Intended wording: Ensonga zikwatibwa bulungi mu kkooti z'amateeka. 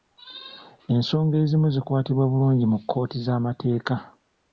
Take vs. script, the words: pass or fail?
fail